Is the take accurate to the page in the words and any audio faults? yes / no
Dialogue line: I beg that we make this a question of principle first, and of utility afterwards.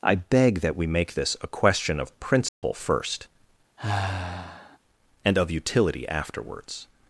no